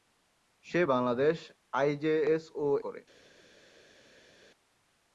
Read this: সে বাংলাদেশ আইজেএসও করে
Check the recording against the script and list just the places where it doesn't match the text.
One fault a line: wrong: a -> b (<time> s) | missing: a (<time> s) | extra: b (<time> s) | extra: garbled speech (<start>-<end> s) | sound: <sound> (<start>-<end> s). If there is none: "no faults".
no faults